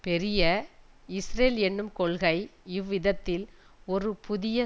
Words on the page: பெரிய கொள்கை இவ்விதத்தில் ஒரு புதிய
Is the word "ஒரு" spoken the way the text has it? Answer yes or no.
yes